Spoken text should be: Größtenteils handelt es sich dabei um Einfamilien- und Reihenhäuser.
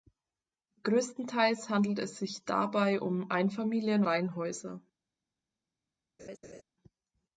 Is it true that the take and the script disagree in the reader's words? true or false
true